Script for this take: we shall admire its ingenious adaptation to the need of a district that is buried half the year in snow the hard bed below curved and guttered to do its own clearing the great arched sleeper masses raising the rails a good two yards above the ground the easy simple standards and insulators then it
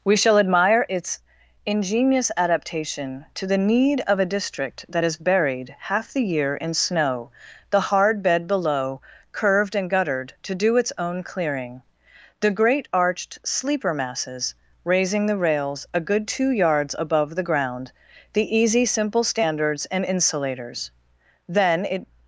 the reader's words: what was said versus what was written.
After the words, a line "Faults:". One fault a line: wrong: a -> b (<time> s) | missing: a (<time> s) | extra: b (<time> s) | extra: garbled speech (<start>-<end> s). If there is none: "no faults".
we shall admire its ingenious adaptation to the need of a district that is buried half the year in snow the hard bed below curved and guttered to do its own clearing the great arched sleeper masses raising the rails a good two yards above the ground the easy simple standards and insulators then it
Faults:
no faults